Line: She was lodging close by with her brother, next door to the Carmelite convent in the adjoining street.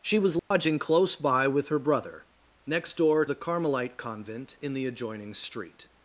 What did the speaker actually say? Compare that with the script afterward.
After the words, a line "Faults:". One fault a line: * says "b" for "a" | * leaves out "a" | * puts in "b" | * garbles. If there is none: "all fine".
She was lodging close by with her brother, next door the Carmelite convent in the adjoining street.
Faults:
* leaves out "to"